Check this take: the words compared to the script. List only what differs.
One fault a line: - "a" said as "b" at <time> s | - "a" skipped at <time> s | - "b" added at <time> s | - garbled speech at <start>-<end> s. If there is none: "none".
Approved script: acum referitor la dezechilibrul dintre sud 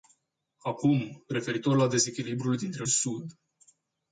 none